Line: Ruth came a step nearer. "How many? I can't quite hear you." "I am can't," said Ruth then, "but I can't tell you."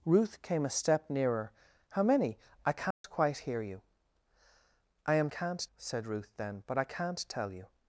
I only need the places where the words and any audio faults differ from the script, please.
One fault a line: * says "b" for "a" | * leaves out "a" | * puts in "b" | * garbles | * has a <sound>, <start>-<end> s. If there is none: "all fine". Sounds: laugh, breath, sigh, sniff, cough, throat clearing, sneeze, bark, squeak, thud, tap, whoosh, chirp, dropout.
* has a dropout, 2.9-3.0 s